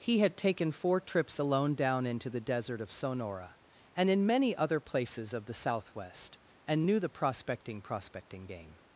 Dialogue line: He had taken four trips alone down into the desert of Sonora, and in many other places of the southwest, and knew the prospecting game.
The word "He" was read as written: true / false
true